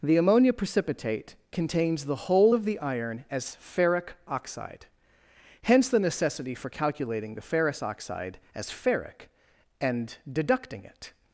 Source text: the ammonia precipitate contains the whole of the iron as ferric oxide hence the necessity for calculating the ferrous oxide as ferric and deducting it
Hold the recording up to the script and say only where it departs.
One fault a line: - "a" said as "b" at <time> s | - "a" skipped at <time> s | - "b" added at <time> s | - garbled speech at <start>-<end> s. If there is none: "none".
none